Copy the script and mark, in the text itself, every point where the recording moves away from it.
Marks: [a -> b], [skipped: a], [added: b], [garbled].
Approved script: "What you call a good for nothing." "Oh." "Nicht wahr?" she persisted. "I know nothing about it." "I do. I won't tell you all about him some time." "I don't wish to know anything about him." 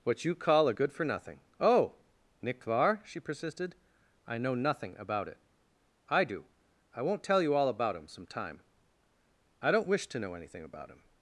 "What you call a good for nothing." "Oh." "Nicht wahr?" she persisted. "I know nothing about it." "I do. I won't tell you all about him some time." "I don't wish to know anything about him."